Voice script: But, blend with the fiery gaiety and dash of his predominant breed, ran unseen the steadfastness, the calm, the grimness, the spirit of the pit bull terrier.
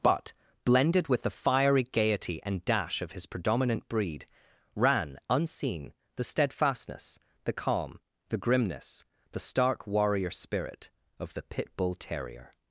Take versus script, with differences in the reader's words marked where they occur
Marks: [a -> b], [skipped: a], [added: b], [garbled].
But, [blend -> blended] with the fiery gaiety and dash of his predominant breed, ran unseen the steadfastness, the calm, the grimness, the [added: stark warrior] spirit of the pit bull terrier.